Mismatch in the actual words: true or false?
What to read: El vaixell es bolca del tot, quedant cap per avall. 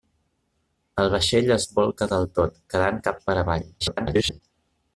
true